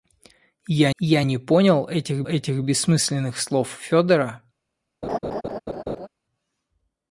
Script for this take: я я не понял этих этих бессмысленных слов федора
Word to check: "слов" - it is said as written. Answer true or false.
true